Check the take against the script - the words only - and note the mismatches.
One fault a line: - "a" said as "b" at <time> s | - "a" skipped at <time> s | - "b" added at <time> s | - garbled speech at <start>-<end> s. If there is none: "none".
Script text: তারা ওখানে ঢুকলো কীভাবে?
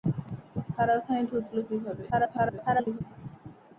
- garbled speech at 2.1-3.0 s